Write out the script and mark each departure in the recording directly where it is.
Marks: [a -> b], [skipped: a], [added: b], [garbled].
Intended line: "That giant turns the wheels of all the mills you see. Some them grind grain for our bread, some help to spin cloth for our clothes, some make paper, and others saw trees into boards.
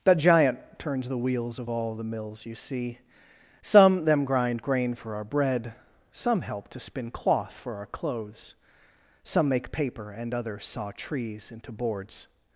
"That giant turns the wheels of all the mills you see. Some them grind grain for our bread, some help to spin cloth for our clothes, some make paper, and others saw trees into boards.